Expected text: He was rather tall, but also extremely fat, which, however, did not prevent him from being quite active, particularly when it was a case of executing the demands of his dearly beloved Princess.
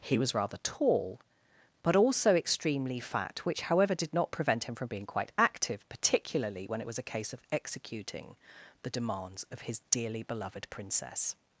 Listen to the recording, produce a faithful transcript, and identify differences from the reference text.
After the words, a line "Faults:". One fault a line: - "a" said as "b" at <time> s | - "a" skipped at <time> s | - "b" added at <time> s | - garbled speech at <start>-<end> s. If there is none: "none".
He was rather tall, but also extremely fat, which, however, did not prevent him from being quite active, particularly when it was a case of executing the demands of his dearly beloved Princess.
Faults:
none